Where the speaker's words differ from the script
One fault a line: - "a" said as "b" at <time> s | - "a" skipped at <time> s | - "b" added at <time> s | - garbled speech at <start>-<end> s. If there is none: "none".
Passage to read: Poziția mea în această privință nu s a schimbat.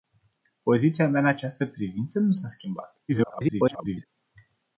- garbled speech at 3.1-4.1 s